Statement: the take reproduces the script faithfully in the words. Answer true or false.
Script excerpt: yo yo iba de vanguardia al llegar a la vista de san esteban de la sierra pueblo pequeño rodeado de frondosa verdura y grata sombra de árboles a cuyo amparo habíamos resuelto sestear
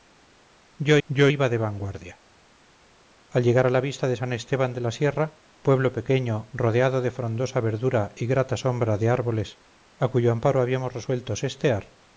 true